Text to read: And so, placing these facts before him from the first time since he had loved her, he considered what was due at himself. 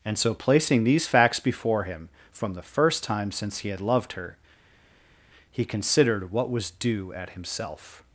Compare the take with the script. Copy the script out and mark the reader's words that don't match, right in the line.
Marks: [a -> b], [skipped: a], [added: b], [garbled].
And so, placing these facts before him from the first time since he had loved her, he considered what was due at himself.